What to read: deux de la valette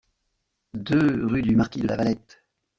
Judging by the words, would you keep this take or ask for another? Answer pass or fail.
fail